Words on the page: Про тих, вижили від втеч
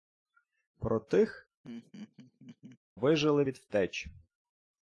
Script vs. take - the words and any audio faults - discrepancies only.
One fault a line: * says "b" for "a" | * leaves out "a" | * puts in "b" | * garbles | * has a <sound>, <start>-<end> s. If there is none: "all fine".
* has a laugh, 1.6-2.8 s